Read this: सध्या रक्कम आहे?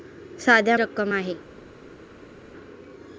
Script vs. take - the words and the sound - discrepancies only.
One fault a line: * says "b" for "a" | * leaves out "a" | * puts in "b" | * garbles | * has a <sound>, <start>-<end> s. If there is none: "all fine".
all fine